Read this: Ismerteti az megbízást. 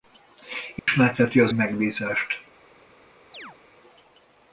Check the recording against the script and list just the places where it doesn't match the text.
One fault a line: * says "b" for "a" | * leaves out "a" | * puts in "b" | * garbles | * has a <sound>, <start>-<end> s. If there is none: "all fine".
* has a dropout, 0.8-0.9 s
* has a chirp, 3.3-3.6 s